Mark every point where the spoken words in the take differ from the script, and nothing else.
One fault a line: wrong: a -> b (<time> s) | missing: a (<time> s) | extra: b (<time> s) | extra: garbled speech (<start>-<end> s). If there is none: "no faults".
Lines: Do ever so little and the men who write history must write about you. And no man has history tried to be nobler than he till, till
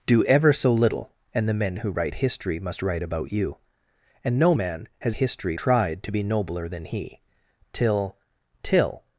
no faults